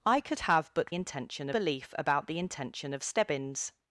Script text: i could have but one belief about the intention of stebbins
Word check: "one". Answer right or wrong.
wrong